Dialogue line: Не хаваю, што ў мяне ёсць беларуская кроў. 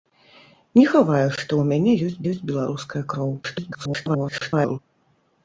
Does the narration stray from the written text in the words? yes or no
yes